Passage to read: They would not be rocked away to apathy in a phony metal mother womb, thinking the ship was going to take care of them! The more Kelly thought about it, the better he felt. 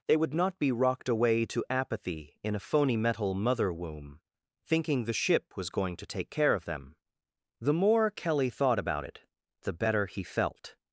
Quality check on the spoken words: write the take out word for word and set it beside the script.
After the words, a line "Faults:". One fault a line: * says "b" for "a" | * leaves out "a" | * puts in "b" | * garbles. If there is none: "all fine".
They would not be rocked away to apathy in a phony metal mother womb, thinking the ship was going to take care of them! The more Kelly thought about it, the better he felt.
Faults:
all fine